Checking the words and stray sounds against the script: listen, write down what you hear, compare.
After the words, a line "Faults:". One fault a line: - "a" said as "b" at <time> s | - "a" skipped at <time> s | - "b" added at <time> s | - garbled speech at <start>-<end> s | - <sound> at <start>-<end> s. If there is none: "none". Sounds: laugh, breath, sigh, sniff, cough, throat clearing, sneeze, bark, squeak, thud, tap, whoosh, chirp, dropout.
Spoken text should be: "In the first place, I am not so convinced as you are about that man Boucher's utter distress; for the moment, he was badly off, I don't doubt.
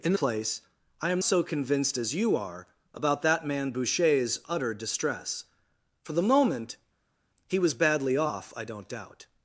"In place, I am so convinced as you are about that man Boucher's utter distress; for the moment, he was badly off, I don't doubt.
Faults:
- "the first" skipped at 0.1 s
- "not" skipped at 1.2 s